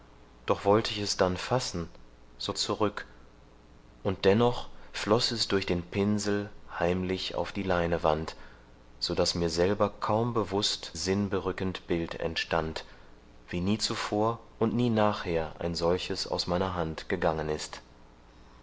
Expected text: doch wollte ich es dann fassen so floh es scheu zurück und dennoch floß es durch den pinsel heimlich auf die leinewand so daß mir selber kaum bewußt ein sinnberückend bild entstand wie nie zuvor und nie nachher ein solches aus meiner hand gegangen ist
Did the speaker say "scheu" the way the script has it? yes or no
no